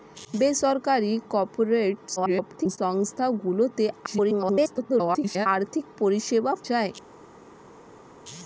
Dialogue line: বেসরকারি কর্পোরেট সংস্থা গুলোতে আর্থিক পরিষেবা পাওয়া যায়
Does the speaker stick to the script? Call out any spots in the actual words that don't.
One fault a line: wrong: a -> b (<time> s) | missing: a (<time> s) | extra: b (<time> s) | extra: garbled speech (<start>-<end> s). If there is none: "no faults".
extra: garbled speech (2.2-2.8 s)
extra: garbled speech (4.1-5.5 s)
missing: পাওয়া (6.5 s)